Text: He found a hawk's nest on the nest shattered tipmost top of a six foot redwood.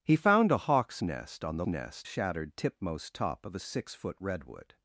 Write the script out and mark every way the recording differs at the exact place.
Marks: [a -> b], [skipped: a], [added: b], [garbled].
He found a hawk's nest on the nest shattered tipmost top of a six foot redwood.